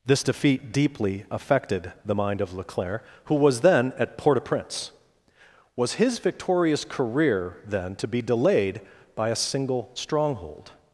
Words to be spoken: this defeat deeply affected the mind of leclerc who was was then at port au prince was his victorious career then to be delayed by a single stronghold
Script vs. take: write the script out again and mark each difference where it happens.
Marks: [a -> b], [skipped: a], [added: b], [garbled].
this defeat deeply affected the mind of leclerc who was [skipped: was] then at port au prince was his victorious career then to be delayed by a single stronghold